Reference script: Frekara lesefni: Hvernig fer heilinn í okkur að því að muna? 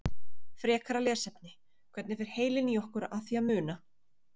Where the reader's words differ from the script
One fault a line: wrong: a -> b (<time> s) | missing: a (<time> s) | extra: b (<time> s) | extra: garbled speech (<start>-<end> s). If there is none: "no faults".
no faults